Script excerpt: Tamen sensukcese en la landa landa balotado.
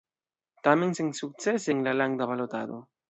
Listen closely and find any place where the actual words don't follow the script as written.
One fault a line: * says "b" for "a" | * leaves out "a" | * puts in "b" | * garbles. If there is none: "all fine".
* leaves out "landa"